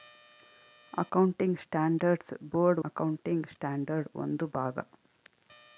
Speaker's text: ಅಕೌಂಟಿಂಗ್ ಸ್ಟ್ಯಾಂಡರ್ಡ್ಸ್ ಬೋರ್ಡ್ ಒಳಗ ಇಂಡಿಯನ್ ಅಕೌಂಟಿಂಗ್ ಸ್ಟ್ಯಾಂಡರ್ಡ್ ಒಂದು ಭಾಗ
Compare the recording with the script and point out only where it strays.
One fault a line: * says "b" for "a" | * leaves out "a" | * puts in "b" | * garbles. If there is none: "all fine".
* leaves out "ಒಳಗ ಇಂಡಿಯನ್"